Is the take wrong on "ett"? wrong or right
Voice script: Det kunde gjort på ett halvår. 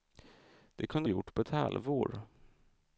right